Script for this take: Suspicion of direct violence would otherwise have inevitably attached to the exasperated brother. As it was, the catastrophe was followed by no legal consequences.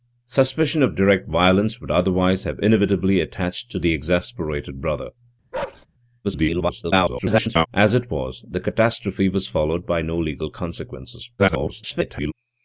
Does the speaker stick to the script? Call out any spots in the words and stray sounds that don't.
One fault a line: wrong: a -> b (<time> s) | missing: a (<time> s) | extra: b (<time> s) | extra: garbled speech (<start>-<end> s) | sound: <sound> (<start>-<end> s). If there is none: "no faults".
sound: bark (5.5-5.9 s)
extra: garbled speech (6.2-7.7 s)
extra: garbled speech (11.4-12.3 s)